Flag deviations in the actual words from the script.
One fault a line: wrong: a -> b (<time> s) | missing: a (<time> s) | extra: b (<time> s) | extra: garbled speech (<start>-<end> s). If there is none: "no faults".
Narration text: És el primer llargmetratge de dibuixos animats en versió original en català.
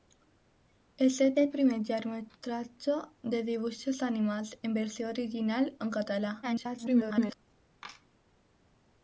extra: el (1.4 s)
extra: garbled speech (6.4-7.4 s)